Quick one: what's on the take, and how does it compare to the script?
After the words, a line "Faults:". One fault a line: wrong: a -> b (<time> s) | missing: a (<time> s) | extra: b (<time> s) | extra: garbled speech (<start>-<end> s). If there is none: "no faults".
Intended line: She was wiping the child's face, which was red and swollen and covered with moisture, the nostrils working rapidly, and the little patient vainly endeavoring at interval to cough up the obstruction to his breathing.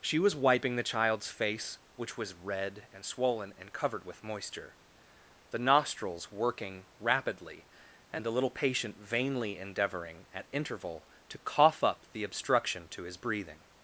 She was wiping the child's face, which was red and swollen and covered with moisture, the nostrils working rapidly, and the little patient vainly endeavoring at interval to cough up the obstruction to his breathing.
Faults:
no faults